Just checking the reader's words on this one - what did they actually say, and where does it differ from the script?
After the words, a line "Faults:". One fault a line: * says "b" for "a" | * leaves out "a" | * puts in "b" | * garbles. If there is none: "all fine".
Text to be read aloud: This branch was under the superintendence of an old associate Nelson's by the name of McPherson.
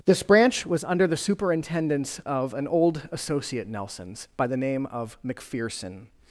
This branch was under the superintendence of an old associate Nelson's by the name of McPherson.
Faults:
all fine